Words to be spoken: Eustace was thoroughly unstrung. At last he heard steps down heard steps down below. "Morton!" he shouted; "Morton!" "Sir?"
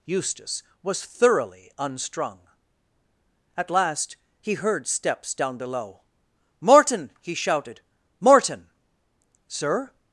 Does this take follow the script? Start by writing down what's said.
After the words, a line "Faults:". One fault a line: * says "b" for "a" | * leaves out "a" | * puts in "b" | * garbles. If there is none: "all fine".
Eustace was thoroughly unstrung. At last he heard steps down below. "Morton!" he shouted; "Morton!" "Sir?"
Faults:
* leaves out "heard steps down"